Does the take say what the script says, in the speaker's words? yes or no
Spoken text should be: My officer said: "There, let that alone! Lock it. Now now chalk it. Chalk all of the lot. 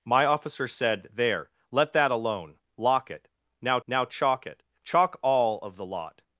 yes